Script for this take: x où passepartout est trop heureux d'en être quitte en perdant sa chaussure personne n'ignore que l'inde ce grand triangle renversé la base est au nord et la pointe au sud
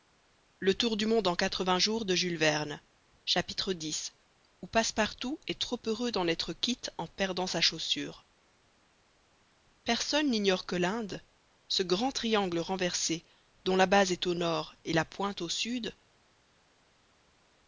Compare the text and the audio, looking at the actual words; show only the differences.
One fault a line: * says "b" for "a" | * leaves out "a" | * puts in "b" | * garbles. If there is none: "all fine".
* puts in "dont"